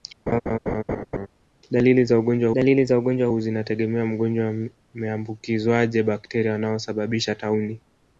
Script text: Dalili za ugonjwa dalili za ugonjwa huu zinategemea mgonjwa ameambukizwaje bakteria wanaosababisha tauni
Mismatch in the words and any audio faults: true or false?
true